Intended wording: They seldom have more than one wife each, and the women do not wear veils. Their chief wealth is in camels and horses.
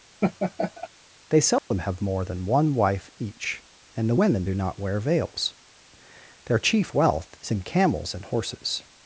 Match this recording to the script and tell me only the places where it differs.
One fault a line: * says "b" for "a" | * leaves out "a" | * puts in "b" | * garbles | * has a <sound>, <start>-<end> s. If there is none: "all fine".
* has a laugh, 0.2-0.9 s
* has a dropout, 1.6-1.7 s